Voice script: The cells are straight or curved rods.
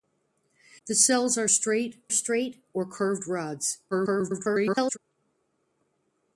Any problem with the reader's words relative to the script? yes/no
yes